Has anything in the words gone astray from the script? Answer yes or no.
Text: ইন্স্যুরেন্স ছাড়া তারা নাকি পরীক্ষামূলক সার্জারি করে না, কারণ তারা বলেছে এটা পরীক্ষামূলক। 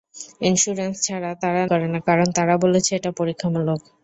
yes